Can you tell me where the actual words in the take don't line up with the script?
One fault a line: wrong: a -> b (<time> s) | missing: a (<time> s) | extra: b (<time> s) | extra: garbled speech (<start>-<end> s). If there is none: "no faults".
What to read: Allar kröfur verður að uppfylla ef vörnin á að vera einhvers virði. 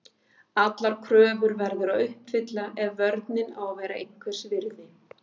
no faults